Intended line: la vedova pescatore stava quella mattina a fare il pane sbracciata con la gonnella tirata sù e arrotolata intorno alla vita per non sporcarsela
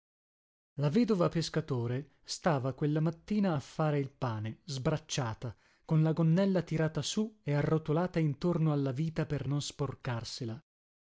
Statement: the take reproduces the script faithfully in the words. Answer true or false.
true